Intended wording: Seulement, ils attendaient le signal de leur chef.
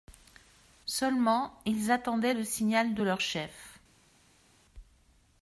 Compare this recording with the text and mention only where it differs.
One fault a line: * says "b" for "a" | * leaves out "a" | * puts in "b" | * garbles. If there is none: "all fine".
all fine